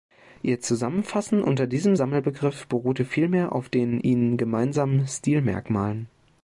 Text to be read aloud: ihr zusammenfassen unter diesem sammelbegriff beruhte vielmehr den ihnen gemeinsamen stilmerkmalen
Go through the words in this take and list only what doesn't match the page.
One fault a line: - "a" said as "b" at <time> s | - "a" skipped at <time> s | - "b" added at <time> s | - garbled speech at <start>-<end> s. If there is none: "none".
- "auf" added at 3.5 s